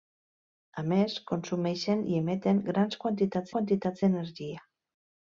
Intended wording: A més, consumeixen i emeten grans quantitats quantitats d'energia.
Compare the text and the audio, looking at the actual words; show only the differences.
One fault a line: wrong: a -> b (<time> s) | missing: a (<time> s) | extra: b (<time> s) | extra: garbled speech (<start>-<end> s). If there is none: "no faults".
no faults